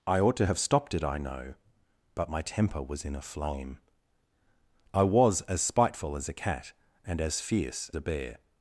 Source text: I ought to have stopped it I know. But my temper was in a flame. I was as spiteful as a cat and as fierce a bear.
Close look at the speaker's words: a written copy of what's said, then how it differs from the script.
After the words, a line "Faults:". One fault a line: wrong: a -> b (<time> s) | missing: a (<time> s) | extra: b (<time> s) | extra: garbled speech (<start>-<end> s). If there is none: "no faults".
I ought to have stopped it I know. But my temper was in a flame. I was as spiteful as a cat and as fierce a bear.
Faults:
no faults